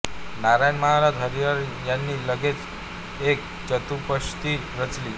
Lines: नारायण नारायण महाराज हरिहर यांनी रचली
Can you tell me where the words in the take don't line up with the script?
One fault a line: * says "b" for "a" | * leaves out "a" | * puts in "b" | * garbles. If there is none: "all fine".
* leaves out "नारायण"
* puts in "लगेच एक चतुष्पदी"